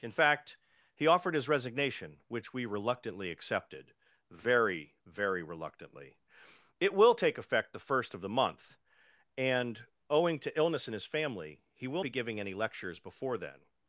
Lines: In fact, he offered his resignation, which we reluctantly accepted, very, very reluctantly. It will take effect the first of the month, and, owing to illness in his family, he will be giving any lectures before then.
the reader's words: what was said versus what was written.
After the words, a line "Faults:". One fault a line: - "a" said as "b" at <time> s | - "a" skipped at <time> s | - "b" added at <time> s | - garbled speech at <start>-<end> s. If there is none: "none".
In fact, he offered his resignation, which we reluctantly accepted, very, very reluctantly. It will take effect the first of the month, and, owing to illness in his family, he will be giving any lectures before then.
Faults:
none